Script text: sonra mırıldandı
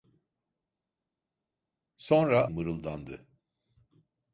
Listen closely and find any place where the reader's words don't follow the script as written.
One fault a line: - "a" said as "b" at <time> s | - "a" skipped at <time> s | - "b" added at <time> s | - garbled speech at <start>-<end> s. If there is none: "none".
none